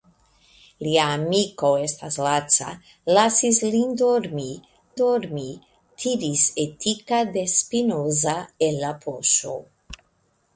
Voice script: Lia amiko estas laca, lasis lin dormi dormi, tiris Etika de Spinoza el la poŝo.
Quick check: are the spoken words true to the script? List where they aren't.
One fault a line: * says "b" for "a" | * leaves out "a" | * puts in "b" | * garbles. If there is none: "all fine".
all fine